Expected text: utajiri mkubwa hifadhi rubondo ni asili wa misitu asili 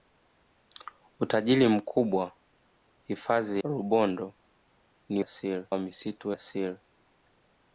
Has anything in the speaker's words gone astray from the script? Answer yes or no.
no